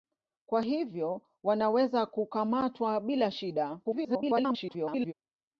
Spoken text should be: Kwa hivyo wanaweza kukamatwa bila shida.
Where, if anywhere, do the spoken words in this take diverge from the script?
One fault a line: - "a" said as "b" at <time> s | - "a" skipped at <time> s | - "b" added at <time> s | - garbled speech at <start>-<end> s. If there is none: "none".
- garbled speech at 3.8-5.1 s